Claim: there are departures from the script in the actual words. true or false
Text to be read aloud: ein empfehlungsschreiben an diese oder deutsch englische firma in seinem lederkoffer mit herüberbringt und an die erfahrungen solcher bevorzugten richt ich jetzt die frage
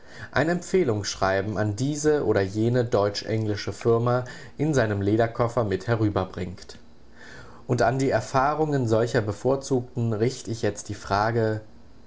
true